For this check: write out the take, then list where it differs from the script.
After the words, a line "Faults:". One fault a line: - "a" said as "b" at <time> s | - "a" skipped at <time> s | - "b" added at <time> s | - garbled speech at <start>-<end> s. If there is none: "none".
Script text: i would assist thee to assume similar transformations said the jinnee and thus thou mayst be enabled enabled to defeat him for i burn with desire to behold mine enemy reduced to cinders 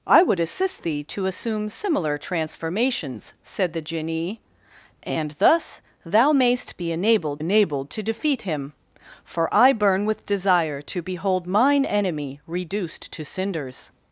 i would assist thee to assume similar transformations said the jinnee and thus thou mayst be enabled enabled to defeat him for i burn with desire to behold mine enemy reduced to cinders
Faults:
none